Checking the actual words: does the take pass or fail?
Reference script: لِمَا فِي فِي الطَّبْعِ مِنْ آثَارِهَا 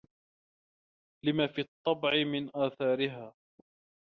fail